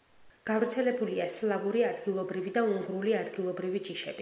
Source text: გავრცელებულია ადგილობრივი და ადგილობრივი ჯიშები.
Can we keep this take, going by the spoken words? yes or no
no